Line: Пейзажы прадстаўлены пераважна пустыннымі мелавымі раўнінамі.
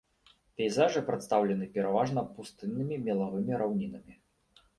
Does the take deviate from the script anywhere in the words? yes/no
no